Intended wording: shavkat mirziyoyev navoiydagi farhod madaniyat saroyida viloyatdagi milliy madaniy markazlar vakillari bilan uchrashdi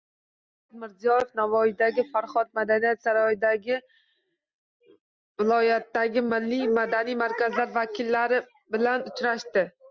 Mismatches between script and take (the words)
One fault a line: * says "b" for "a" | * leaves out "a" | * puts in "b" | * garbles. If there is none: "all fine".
all fine